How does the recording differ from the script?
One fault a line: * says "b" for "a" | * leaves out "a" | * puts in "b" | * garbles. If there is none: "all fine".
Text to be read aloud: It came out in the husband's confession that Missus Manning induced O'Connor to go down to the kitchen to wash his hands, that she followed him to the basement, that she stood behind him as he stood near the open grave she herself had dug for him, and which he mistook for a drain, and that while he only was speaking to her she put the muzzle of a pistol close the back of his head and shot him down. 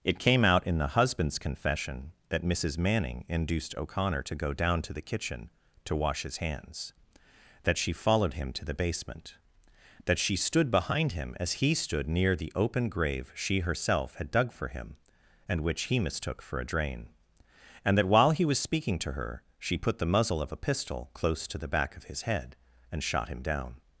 * leaves out "only"
* puts in "to"